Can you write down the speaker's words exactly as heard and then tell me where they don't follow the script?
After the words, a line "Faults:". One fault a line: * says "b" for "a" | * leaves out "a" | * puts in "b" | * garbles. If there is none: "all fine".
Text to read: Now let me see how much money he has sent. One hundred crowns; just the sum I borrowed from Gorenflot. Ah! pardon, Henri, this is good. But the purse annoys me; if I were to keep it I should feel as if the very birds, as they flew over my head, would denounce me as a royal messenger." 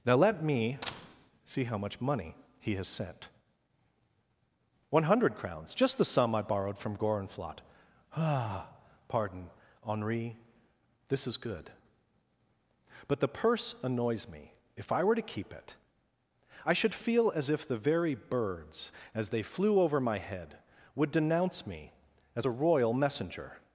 Now let me see how much money he has sent. One hundred crowns; just the sum I borrowed from Gorenflot. Ah! pardon, Henri, this is good. But the purse annoys me; if I were to keep it I should feel as if the very birds, as they flew over my head, would denounce me as a royal messenger."
Faults:
all fine